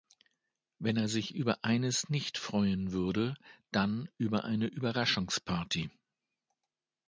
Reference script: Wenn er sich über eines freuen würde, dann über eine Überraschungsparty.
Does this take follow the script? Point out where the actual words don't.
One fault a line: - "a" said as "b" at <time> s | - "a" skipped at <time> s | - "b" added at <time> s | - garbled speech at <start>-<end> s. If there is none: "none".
- "nicht" added at 2.1 s